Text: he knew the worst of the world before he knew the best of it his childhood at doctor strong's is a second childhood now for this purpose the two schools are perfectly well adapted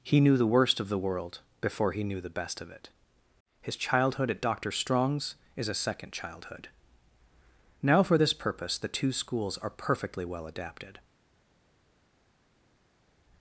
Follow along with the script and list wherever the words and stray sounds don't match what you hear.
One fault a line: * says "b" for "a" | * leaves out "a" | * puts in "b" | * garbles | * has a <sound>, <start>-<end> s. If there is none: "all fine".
all fine